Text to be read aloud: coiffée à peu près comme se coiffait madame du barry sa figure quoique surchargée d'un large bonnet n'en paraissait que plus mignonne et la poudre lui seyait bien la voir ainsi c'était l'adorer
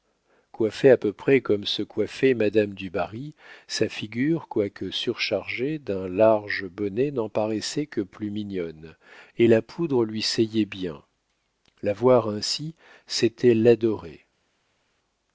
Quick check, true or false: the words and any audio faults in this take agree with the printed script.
true